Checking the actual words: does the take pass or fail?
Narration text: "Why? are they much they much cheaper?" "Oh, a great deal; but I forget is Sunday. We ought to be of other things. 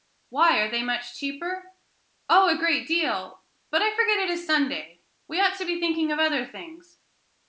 fail